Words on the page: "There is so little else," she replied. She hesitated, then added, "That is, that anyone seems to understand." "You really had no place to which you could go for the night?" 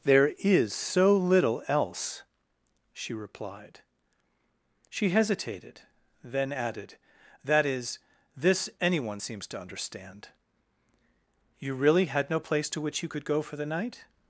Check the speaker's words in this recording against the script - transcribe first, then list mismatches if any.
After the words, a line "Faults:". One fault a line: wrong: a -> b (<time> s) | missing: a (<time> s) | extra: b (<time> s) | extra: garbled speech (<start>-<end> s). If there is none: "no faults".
"There is so little else," she replied. She hesitated, then added, "That is, this anyone seems to understand." "You really had no place to which you could go for the night?"
Faults:
wrong: that -> this (8.3 s)